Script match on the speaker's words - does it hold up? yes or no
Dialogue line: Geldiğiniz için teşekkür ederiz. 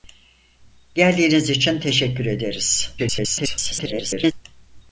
no